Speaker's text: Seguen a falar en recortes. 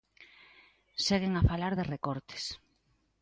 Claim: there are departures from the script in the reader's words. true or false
true